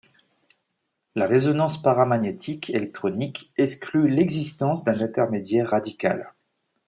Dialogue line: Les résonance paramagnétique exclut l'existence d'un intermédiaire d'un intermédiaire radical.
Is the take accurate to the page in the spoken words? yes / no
no